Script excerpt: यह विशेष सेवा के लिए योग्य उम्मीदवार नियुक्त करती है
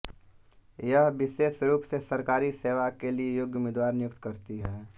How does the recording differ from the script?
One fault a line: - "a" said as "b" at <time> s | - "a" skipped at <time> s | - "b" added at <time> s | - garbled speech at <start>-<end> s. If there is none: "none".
- "रूप से सरकारी" added at 1.6 s